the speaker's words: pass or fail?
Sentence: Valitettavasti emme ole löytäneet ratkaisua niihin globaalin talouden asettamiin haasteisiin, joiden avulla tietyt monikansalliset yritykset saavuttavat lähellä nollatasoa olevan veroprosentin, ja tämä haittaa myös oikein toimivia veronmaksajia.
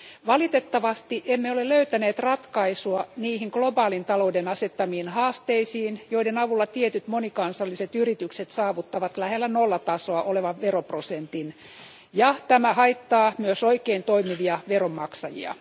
pass